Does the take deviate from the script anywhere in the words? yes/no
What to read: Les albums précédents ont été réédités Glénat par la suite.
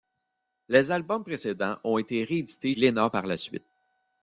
no